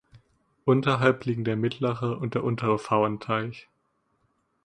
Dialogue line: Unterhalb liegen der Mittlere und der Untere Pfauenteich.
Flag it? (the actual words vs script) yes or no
no